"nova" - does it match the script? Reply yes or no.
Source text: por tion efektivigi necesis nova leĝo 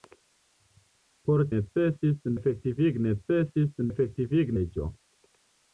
no